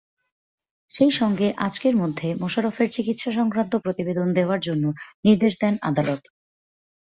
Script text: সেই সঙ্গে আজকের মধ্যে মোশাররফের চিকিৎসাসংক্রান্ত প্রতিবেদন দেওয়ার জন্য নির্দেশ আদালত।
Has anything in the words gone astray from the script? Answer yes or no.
yes